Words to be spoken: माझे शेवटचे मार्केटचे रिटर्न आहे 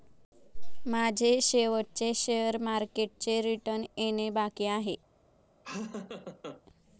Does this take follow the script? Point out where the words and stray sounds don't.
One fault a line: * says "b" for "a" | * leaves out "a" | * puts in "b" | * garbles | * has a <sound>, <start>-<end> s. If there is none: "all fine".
* puts in "शेअर"
* puts in "येणे बाकी"
* has a laugh, 5.6-6.6 s